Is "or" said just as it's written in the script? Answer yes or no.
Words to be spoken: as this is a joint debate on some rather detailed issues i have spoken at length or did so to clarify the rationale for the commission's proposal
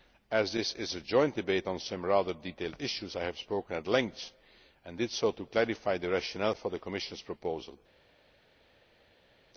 no